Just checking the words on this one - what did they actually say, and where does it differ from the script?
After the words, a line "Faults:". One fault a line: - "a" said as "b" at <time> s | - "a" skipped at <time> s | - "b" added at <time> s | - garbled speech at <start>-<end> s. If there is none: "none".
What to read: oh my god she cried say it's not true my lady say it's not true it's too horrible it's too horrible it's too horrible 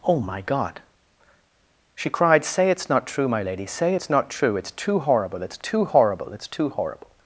oh my god she cried say it's not true my lady say it's not true it's too horrible it's too horrible it's too horrible
Faults:
none